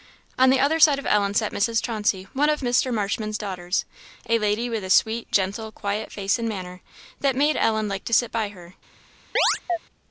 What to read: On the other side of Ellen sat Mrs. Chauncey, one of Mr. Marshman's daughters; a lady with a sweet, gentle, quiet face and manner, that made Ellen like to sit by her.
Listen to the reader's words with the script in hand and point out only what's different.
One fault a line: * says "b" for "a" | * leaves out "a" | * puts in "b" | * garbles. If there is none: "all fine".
all fine